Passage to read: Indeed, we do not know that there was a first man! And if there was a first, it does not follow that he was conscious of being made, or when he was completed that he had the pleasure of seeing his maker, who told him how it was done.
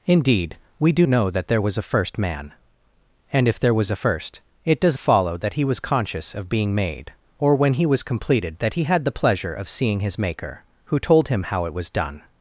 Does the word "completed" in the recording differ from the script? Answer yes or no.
no